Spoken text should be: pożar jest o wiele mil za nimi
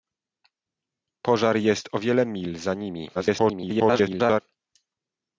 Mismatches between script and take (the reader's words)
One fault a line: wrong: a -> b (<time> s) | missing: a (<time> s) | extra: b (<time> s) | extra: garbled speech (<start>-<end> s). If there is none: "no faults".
extra: garbled speech (3.1-4.4 s)